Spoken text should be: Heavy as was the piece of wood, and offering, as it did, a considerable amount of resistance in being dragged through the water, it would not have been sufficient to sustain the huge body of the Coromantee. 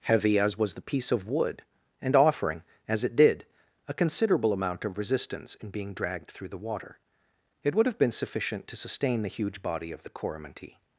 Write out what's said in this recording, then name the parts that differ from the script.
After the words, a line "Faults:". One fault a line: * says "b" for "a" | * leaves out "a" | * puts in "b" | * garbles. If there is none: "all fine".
Heavy as was the piece of wood, and offering, as it did, a considerable amount of resistance in being dragged through the water, it would have been sufficient to sustain the huge body of the Coromantee.
Faults:
* leaves out "not"